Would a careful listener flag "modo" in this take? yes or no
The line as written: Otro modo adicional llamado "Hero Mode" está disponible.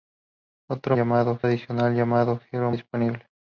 yes